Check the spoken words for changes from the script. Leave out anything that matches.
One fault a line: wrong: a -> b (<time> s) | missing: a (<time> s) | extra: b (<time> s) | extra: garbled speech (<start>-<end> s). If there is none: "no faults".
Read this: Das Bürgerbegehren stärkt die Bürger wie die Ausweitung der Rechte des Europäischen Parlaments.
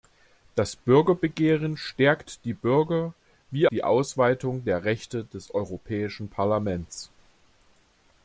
no faults